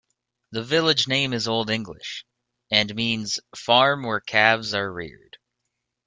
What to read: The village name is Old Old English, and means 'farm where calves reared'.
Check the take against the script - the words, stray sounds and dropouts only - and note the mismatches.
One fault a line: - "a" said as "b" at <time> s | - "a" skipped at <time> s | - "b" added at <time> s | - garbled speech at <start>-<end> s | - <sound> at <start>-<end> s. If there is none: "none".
- "Old" skipped at 1.7 s
- "are" added at 4.7 s